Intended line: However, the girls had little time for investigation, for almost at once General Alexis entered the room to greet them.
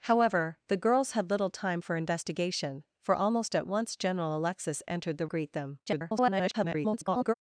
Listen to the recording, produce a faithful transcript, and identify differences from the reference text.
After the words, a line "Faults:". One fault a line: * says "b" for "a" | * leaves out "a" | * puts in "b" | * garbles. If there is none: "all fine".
However, the girls had little time for investigation, for almost at once General Alexis entered the greet them. [garbled]
Faults:
* leaves out "room to"
* garbles